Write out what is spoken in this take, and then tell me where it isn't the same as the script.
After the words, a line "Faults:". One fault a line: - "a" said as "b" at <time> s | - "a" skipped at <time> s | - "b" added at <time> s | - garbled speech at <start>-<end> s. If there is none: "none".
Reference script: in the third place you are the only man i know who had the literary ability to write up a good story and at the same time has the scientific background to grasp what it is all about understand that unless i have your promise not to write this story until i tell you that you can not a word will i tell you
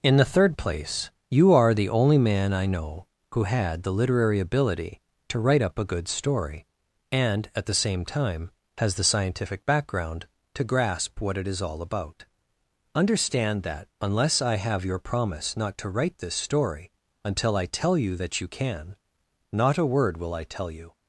in the third place you are the only man i know who had the literary ability to write up a good story and at the same time has the scientific background to grasp what it is all about understand that unless i have your promise not to write this story until i tell you that you can not a word will i tell you
Faults:
none